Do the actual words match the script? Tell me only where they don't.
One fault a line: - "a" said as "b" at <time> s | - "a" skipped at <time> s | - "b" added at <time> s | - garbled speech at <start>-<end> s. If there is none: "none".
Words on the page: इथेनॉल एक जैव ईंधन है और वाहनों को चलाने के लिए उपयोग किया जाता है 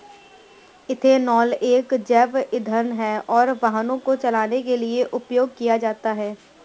none